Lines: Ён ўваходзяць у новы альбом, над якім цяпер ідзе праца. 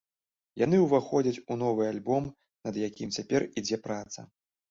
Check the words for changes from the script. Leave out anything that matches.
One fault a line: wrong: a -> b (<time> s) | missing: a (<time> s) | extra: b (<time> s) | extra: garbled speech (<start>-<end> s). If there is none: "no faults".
wrong: Ён -> Яны (0.6 s)